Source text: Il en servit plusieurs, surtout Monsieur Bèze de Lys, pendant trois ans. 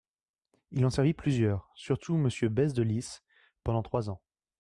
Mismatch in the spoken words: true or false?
false